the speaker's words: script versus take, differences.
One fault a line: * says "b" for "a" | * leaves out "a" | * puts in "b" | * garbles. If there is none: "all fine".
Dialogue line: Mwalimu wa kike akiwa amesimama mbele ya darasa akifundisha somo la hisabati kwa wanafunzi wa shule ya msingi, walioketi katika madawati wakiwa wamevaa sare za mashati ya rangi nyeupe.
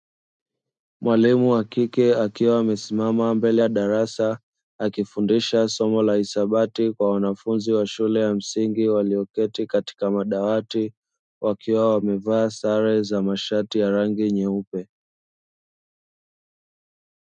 all fine